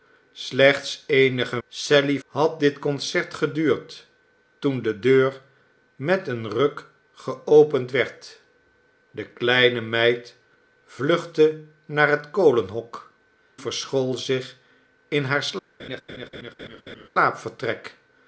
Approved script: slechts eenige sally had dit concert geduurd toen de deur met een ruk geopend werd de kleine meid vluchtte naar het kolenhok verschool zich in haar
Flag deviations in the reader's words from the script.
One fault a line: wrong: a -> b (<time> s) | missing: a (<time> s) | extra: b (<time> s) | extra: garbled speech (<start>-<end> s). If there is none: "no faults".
no faults